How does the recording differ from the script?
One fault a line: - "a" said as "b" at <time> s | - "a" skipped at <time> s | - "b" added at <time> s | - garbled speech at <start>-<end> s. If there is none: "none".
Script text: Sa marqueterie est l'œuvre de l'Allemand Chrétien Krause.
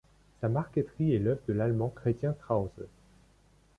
none